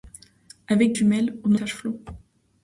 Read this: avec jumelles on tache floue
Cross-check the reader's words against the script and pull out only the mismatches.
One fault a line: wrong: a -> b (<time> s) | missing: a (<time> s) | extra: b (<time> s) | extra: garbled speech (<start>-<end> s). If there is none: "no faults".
no faults